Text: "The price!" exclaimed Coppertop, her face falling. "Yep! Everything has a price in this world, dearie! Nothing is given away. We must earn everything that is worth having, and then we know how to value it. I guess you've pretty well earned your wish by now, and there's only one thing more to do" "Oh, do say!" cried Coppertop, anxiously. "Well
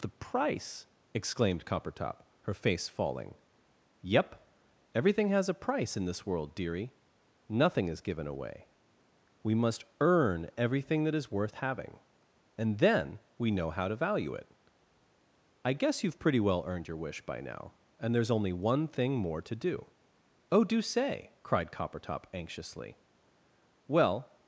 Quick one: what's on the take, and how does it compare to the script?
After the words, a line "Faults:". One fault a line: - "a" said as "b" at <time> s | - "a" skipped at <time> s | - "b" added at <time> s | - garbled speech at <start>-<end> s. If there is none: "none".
"The price!" exclaimed Coppertop, her face falling. "Yep! Everything has a price in this world, dearie! Nothing is given away. We must earn everything that is worth having, and then we know how to value it. I guess you've pretty well earned your wish by now, and there's only one thing more to do" "Oh, do say!" cried Coppertop, anxiously. "Well
Faults:
none